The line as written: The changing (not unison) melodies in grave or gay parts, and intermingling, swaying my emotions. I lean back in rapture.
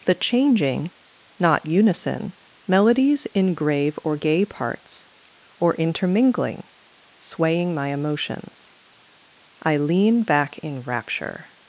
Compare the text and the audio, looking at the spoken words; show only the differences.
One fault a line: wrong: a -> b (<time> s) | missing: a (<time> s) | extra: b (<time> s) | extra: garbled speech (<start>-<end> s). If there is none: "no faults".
wrong: and -> or (5.6 s)